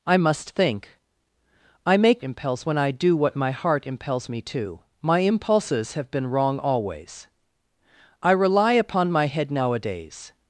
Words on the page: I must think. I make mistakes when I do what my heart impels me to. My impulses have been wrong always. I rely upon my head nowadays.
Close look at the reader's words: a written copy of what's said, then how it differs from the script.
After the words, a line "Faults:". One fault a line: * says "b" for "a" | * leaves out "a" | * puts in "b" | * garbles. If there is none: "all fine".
I must think. I make impels when I do what my heart impels me to. My impulses have been wrong always. I rely upon my head nowadays.
Faults:
* says "impels" for "mistakes"